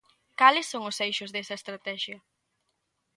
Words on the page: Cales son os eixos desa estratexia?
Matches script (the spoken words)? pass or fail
pass